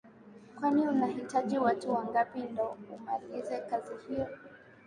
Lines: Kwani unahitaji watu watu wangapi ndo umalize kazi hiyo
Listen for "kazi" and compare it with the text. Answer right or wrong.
right